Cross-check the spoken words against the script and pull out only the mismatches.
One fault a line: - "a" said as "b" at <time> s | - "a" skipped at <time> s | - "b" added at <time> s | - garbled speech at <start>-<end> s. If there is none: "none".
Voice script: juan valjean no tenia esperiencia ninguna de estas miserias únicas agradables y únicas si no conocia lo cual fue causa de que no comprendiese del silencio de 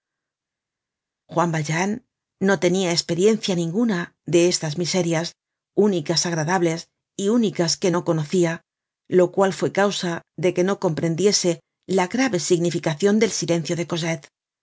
- "si" said as "que" at 7.8 s
- "la grave significacion" added at 11.9 s